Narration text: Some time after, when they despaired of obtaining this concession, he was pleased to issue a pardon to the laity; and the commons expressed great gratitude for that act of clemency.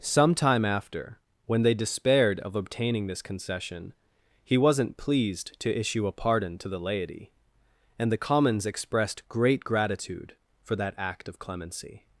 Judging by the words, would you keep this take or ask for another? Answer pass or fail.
fail